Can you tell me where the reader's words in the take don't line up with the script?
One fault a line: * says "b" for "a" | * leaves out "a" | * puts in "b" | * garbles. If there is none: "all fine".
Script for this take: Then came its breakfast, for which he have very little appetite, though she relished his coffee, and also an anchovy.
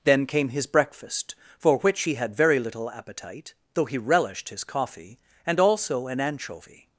* says "his" for "its"
* says "had" for "have"
* says "he" for "she"